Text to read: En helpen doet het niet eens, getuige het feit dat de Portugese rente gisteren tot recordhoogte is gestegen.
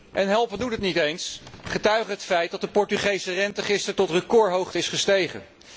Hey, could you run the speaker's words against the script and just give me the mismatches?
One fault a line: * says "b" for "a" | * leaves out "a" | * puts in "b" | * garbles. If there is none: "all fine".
all fine